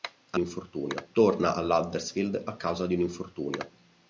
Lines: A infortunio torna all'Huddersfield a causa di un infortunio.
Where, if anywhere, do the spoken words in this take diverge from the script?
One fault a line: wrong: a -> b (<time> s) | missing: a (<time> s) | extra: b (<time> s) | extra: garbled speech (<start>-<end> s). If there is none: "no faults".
no faults